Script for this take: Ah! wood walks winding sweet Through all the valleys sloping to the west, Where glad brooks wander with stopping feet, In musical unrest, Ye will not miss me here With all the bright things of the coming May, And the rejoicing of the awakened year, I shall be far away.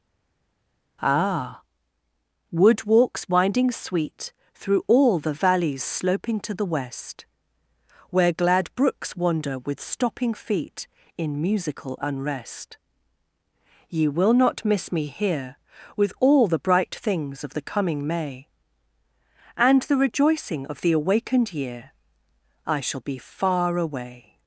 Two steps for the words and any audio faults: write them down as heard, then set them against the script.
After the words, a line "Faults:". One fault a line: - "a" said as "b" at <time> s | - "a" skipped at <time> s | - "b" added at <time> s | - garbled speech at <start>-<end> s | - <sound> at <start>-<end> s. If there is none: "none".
Ah! wood walks winding sweet Through all the valleys sloping to the west, Where glad brooks wander with stopping feet, In musical unrest, Ye will not miss me here With all the bright things of the coming May, And the rejoicing of the awakened year, I shall be far away.
Faults:
none